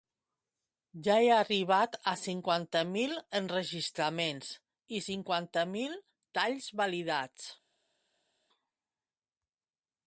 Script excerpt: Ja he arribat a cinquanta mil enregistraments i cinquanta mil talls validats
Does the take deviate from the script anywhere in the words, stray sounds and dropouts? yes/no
no